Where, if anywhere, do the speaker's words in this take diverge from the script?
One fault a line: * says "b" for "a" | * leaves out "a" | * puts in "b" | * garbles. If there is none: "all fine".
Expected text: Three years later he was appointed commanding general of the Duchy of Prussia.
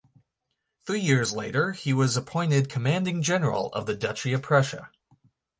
all fine